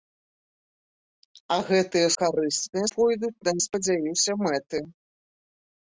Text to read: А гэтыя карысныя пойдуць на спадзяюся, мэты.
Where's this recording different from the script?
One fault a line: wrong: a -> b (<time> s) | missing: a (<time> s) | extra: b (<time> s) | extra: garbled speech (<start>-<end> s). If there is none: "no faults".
no faults